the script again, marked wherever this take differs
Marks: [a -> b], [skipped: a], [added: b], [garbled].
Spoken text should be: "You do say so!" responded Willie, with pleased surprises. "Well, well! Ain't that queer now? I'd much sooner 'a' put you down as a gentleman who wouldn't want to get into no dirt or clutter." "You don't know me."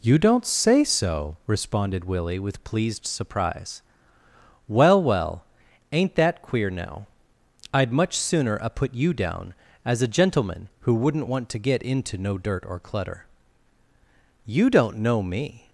"You [do -> don't] say so!" responded Willie, with pleased [surprises. -> surprise] "Well, well! Ain't that queer now? I'd much sooner 'a' put you down as a gentleman who wouldn't want to get into no dirt or clutter." "You don't know me."